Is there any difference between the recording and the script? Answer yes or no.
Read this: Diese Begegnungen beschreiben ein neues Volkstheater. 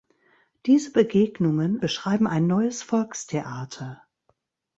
no